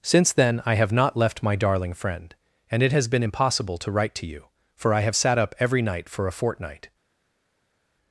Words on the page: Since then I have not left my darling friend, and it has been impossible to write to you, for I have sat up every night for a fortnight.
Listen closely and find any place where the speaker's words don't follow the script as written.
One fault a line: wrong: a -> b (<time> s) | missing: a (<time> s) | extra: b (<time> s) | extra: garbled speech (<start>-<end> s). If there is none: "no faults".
no faults